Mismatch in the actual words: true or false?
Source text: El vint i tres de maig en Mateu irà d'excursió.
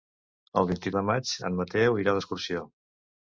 true